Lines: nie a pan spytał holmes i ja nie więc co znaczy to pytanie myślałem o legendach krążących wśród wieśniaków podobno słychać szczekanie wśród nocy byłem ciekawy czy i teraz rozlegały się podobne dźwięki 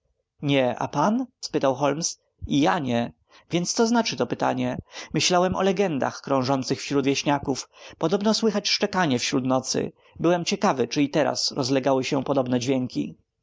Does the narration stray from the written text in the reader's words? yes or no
no